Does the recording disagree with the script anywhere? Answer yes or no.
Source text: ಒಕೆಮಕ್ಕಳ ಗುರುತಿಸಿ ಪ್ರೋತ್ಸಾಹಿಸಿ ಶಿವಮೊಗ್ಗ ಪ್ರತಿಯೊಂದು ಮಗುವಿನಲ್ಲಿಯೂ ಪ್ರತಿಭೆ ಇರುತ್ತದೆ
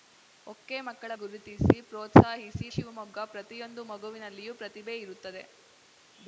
no